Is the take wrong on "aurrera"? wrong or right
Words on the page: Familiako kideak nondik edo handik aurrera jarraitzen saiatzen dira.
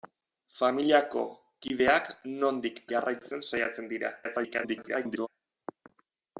wrong